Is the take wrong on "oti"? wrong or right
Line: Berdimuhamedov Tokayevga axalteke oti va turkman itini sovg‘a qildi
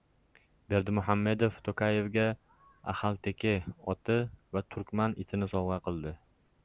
right